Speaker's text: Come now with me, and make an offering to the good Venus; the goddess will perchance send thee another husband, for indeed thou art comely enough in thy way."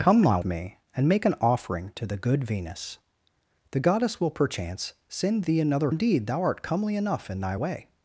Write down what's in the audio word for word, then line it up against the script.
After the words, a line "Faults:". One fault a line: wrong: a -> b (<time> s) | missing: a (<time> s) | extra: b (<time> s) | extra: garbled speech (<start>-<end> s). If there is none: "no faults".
Come now me, and make an offering to the good Venus; the goddess will perchance send thee another indeed thou art comely enough in thy way."
Faults:
missing: with (0.4 s)
missing: husband for (5.9 s)